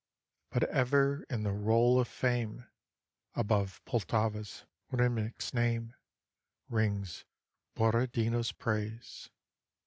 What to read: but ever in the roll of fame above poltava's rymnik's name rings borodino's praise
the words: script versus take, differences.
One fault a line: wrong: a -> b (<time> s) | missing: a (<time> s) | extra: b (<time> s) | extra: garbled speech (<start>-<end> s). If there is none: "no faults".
no faults